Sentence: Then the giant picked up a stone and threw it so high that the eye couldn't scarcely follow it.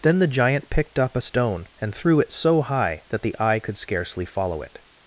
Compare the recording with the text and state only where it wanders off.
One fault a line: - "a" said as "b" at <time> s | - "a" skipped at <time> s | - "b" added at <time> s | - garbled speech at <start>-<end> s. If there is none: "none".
- "couldn't" said as "could" at 3.6 s